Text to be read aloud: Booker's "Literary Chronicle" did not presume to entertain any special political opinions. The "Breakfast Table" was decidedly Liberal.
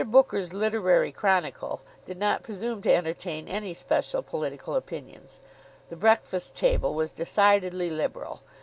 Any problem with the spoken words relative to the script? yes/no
no